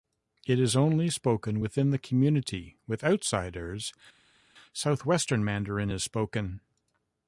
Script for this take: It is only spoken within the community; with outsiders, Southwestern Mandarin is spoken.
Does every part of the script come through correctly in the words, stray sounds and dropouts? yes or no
yes